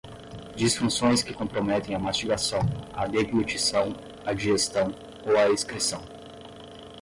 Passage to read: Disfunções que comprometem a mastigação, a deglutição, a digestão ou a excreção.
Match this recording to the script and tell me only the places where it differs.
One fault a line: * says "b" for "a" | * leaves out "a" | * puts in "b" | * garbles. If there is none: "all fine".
all fine